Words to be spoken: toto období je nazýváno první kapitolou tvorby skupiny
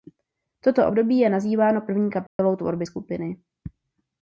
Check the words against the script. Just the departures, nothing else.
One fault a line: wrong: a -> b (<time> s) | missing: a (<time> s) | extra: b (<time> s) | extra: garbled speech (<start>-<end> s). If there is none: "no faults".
no faults